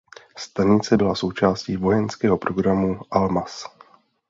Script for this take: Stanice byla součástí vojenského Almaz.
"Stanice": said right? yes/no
yes